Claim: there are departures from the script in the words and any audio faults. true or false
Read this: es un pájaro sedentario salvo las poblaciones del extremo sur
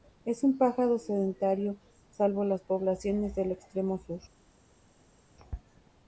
false